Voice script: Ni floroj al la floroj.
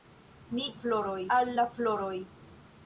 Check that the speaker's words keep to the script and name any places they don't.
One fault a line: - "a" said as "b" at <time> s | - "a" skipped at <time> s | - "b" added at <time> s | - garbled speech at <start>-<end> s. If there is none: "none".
none